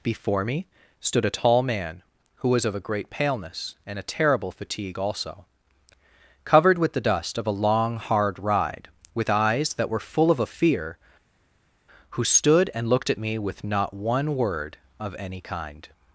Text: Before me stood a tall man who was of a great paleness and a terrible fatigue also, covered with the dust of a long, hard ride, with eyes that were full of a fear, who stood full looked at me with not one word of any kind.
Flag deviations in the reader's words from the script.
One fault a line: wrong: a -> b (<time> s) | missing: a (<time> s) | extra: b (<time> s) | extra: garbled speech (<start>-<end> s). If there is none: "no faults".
wrong: full -> and (12.7 s)